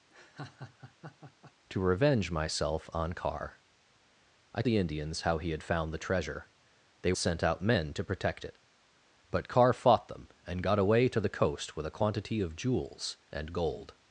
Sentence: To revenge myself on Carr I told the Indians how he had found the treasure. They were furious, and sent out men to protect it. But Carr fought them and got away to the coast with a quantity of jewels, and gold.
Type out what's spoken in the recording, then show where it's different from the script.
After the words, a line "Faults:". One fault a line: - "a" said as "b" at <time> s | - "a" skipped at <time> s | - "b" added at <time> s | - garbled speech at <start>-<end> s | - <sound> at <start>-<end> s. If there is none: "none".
To revenge myself on Carr I the Indians how he had found the treasure. They sent out men to protect it. But Carr fought them and got away to the coast with a quantity of jewels, and gold.
Faults:
- laugh at 0.1-1.5 s
- "told" skipped at 4.6 s
- "were furious and" skipped at 7.1 s